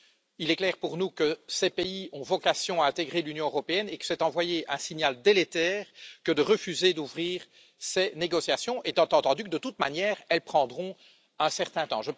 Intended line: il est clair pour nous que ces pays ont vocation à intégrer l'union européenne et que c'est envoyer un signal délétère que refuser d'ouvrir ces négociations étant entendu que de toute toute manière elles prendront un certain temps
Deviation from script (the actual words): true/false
true